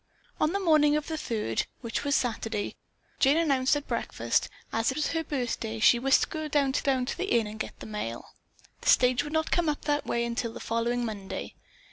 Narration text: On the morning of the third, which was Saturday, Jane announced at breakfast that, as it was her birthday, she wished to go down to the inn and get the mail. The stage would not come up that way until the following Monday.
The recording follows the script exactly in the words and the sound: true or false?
false